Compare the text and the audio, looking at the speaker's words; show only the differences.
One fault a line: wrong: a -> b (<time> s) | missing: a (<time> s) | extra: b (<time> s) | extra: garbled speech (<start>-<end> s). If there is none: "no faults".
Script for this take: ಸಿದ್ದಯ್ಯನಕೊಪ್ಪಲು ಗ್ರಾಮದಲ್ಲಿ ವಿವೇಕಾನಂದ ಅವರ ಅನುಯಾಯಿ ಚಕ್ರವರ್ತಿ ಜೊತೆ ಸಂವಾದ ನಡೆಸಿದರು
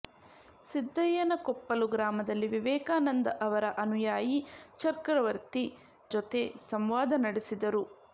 no faults